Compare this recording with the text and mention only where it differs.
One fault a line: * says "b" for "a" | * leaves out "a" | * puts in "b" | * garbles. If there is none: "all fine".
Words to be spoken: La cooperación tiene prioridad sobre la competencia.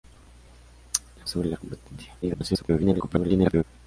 * leaves out "cooperación tiene prioridad"
* garbles